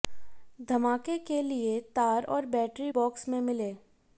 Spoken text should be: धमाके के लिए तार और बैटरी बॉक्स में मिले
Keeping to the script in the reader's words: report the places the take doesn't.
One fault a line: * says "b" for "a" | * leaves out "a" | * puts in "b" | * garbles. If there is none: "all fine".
all fine